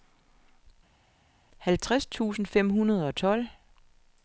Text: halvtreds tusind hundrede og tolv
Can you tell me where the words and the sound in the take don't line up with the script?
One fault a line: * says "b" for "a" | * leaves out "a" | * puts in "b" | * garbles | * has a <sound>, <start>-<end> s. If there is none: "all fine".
* puts in "fem"